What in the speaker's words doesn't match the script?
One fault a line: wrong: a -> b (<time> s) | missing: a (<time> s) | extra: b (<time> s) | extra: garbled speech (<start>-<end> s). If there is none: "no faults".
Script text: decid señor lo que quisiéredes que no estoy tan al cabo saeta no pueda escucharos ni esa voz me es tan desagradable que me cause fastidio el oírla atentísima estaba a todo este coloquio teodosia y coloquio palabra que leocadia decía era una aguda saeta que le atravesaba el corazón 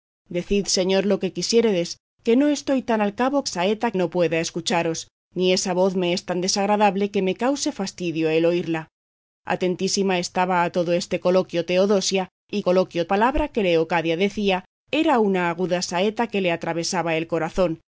no faults